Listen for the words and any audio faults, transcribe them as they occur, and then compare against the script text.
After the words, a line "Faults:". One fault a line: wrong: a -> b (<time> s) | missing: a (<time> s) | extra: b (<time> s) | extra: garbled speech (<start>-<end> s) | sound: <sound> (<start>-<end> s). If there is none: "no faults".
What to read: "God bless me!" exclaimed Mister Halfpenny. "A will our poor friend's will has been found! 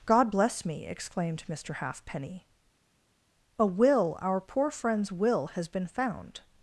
"God bless me!" exclaimed Mister Halfpenny. "A will our poor friend's will has been found!
Faults:
no faults